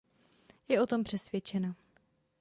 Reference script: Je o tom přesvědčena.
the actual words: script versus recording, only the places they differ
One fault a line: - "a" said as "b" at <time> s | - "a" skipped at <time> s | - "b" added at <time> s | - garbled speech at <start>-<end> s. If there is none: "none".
none